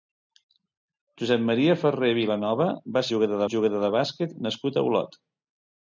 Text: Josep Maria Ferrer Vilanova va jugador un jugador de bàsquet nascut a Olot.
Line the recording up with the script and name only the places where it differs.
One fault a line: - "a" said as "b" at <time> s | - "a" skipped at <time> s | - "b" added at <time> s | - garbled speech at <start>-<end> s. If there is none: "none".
none